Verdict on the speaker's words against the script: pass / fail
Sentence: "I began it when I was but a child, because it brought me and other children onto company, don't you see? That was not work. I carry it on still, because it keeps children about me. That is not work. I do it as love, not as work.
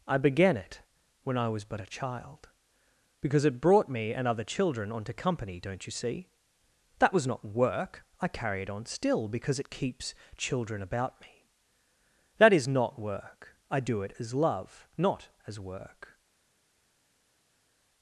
pass